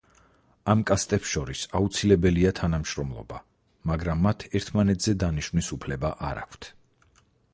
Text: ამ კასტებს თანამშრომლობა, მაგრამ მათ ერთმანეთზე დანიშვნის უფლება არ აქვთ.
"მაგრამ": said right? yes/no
yes